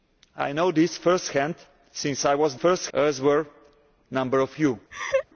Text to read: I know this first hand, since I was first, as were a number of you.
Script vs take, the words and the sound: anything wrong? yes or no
yes